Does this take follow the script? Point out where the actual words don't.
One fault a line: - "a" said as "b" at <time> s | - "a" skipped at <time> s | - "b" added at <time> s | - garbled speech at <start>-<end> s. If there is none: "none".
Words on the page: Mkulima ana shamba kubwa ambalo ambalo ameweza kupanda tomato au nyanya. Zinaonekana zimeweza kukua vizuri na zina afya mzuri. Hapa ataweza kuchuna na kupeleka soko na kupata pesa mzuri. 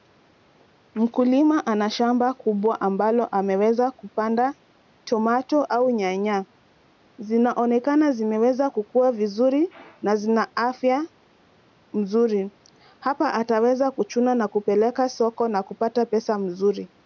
- "ambalo" skipped at 3.2 s